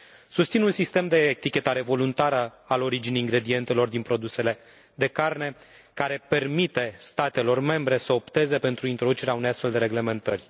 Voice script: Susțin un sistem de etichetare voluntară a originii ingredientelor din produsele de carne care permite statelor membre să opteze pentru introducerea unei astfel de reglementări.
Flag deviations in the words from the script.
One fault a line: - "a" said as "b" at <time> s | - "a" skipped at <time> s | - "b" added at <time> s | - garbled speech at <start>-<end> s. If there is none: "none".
none